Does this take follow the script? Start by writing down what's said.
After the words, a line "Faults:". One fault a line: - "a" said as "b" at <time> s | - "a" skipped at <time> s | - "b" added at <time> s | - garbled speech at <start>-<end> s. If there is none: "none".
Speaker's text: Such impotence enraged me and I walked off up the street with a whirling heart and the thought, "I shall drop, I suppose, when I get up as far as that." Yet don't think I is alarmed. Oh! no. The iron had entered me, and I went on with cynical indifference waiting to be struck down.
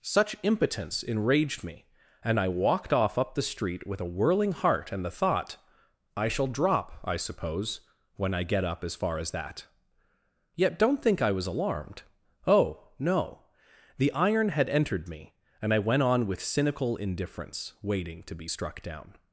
Such impotence enraged me and I walked off up the street with a whirling heart and the thought, "I shall drop, I suppose, when I get up as far as that." Yet don't think I was alarmed. Oh! no. The iron had entered me, and I went on with cynical indifference waiting to be struck down.
Faults:
- "is" said as "was" at 11.3 s